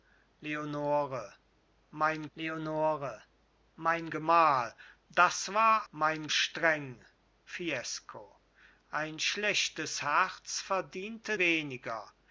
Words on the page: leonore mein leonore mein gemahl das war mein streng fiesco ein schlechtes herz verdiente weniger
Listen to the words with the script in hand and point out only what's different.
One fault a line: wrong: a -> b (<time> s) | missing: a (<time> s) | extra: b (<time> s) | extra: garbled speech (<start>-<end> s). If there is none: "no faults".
no faults